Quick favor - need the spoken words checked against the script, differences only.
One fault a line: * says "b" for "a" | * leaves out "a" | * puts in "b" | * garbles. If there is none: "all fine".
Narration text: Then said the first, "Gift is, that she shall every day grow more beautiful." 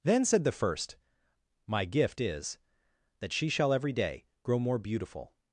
* puts in "My"